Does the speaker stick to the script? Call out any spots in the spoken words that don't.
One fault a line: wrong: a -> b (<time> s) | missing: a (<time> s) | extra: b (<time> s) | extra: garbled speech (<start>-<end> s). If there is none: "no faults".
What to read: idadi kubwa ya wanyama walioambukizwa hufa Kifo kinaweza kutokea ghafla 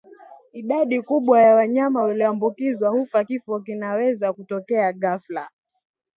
no faults